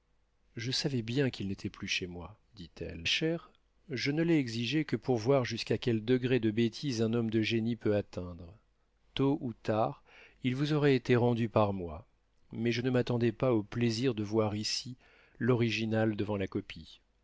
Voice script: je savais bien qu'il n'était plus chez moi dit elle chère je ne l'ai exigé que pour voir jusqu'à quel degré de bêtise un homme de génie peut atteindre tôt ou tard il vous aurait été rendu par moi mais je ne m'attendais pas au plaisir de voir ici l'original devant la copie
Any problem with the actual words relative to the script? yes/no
no